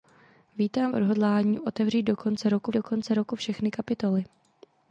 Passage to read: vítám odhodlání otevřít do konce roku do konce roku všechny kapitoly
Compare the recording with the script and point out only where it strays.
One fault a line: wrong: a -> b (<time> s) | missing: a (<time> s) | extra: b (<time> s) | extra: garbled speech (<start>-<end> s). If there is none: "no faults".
no faults